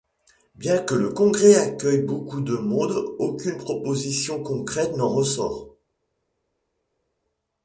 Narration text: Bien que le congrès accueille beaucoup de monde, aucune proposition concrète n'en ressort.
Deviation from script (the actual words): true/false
false